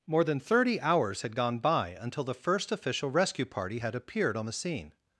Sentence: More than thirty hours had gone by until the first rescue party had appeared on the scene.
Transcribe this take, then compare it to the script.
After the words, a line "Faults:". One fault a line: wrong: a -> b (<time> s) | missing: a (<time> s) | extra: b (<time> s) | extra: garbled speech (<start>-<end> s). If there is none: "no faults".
More than thirty hours had gone by until the first official rescue party had appeared on the scene.
Faults:
extra: official (2.7 s)